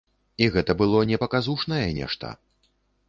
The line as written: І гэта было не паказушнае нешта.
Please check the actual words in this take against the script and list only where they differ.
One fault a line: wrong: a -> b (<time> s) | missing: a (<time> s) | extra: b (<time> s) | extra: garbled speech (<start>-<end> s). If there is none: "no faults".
no faults